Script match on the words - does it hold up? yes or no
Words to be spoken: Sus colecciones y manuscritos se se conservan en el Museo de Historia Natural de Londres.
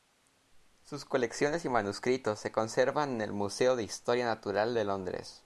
no